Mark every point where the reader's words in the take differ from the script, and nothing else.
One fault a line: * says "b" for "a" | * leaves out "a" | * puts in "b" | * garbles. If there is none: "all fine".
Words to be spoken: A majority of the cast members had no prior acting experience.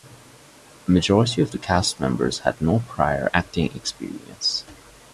all fine